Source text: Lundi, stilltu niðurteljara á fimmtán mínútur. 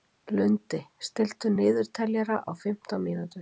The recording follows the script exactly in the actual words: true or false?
true